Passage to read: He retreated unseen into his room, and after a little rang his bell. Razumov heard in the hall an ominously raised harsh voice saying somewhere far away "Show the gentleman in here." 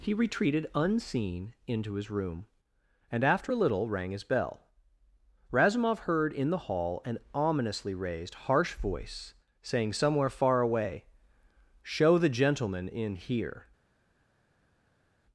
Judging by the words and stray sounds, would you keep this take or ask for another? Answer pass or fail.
pass